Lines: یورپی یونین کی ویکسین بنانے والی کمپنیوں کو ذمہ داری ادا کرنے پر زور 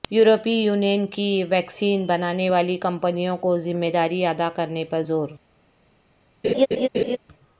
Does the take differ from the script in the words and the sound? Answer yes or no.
yes